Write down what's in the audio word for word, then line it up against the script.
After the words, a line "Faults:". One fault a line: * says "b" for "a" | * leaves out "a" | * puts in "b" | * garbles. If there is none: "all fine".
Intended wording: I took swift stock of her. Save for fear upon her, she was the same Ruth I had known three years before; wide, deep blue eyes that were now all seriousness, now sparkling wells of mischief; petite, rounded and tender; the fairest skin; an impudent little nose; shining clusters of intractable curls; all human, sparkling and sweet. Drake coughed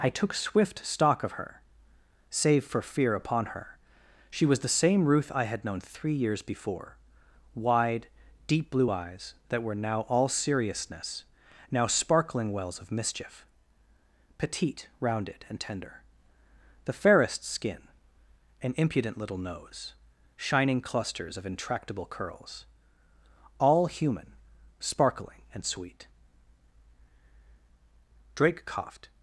I took swift stock of her. Save for fear upon her, she was the same Ruth I had known three years before; wide, deep blue eyes that were now all seriousness, now sparkling wells of mischief; petite, rounded and tender; the fairest skin; an impudent little nose; shining clusters of intractable curls; all human, sparkling and sweet. Drake coughed
Faults:
all fine